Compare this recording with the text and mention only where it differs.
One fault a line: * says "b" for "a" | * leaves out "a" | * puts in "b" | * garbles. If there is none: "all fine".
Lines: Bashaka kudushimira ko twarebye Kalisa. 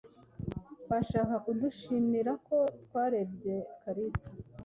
all fine